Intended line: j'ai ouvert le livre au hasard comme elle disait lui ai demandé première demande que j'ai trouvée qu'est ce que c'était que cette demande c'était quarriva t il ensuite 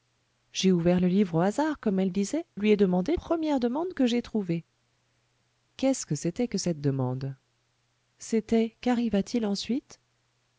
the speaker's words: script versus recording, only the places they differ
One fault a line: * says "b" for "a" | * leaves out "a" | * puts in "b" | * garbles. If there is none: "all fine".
all fine